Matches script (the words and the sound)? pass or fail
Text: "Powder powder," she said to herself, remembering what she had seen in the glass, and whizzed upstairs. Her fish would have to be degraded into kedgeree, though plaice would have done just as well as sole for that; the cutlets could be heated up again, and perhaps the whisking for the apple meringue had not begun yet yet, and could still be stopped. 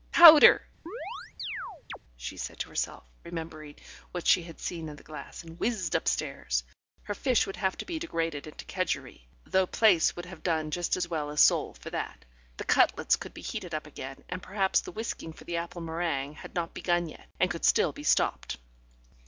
fail